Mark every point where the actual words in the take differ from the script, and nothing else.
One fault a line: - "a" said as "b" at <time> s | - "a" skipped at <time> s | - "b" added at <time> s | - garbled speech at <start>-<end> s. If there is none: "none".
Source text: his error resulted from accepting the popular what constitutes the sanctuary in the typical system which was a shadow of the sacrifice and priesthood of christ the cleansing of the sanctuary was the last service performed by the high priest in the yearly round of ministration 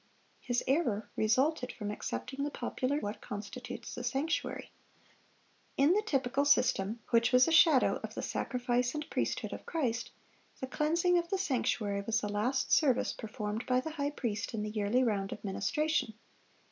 none